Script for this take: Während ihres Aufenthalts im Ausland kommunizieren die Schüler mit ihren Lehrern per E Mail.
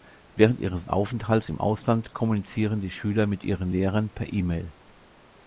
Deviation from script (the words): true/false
false